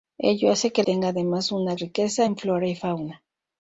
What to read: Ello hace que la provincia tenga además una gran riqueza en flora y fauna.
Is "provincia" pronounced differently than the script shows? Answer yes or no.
yes